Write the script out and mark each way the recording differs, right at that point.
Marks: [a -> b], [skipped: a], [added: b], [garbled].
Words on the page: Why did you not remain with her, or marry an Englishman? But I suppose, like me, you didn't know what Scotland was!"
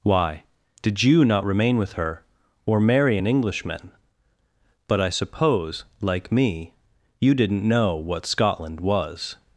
Why did you not remain with her, or marry an Englishman? But I suppose, like me, you didn't know what Scotland was!"